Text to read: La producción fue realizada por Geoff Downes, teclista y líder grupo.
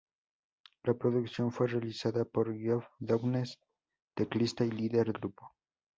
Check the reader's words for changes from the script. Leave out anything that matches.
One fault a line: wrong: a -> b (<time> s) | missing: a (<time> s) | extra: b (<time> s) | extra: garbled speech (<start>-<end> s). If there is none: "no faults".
no faults